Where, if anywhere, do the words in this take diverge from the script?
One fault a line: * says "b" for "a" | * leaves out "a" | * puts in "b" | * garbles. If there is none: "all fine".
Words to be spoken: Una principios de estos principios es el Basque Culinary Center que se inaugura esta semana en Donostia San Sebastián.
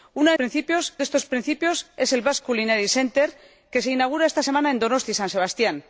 all fine